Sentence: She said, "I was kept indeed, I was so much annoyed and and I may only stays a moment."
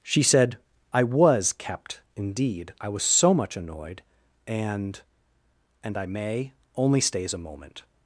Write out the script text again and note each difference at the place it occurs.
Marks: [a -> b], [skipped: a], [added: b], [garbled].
She said, "I was kept indeed, I was so much annoyed and and I may only stays a moment."